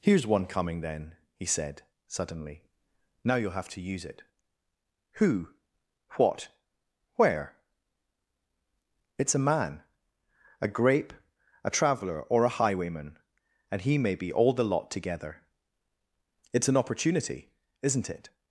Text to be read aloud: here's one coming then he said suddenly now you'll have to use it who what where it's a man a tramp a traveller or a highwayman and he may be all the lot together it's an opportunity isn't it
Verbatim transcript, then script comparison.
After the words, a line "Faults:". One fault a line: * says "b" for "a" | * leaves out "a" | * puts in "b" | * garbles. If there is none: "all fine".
here's one coming then he said suddenly now you'll have to use it who what where it's a man a grape a traveller or a highwayman and he may be all the lot together it's an opportunity isn't it
Faults:
* says "grape" for "tramp"